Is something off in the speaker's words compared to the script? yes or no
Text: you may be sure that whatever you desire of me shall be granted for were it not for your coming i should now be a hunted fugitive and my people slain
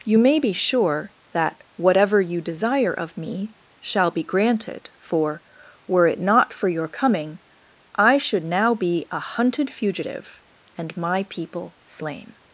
no